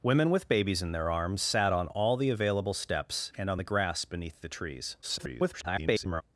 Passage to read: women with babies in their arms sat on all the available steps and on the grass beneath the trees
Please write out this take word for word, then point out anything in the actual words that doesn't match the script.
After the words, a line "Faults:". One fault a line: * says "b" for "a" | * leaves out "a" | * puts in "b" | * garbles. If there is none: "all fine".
women with babies in their arms sat on all the available steps and on the grass beneath the trees [garbled]
Faults:
* garbles